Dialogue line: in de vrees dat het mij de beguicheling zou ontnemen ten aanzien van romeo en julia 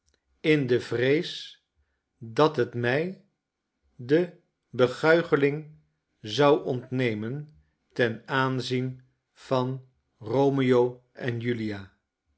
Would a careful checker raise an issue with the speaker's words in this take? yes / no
no